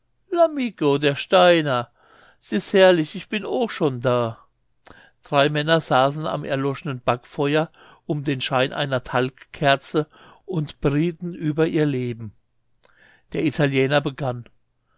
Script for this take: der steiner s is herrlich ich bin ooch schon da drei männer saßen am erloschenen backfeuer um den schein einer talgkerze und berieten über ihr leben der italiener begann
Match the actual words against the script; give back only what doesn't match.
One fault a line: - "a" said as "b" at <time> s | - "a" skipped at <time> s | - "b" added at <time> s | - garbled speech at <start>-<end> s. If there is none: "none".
none